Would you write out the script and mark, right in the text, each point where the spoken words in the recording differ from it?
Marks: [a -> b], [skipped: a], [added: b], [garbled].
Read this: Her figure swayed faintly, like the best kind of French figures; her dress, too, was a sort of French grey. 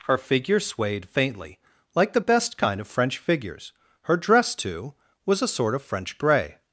Her figure swayed faintly, like the best kind of French figures; her dress, too, was a sort of French grey.